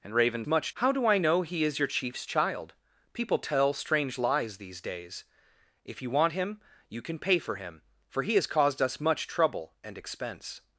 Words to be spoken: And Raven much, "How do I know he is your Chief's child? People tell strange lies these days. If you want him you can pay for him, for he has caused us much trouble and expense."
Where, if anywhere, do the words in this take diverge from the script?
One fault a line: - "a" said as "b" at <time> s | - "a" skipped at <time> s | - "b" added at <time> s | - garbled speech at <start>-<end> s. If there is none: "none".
none